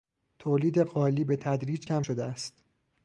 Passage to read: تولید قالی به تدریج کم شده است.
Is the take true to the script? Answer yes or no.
yes